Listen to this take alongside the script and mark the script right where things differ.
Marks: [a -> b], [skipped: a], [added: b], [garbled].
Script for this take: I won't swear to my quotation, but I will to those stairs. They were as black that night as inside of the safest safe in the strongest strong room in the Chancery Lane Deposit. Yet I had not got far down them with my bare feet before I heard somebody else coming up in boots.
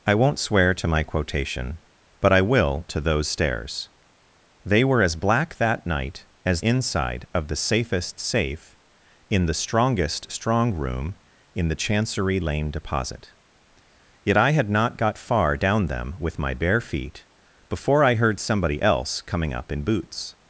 I won't swear to my quotation, but I will to those stairs. They were as black that night as inside of the safest safe in the strongest strong room in the Chancery Lane Deposit. Yet I had not got far down them with my bare feet before I heard somebody else coming up in boots.